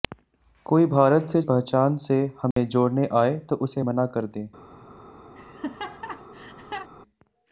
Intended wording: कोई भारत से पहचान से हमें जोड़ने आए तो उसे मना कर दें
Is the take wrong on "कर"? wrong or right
right